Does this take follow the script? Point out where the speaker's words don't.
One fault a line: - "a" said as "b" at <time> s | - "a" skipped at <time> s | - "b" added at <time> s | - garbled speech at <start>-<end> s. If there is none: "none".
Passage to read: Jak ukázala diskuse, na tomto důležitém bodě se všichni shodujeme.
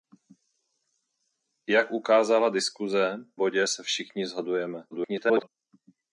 - "na tomto důležitém" skipped at 3.2 s
- garbled speech at 4.9-5.5 s